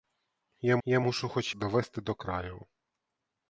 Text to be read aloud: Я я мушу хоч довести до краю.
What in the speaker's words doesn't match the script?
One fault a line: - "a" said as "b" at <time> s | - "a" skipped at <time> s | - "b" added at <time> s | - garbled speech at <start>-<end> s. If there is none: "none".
none